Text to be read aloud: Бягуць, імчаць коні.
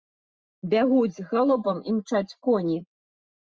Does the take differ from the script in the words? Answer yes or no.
yes